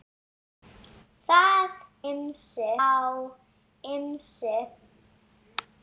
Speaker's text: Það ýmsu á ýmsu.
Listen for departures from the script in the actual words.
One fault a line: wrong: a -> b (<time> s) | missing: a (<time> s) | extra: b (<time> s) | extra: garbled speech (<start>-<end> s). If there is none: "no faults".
no faults